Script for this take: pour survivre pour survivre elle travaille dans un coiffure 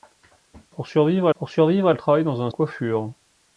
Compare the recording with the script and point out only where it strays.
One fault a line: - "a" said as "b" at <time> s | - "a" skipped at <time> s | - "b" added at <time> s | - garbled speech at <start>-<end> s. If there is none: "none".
none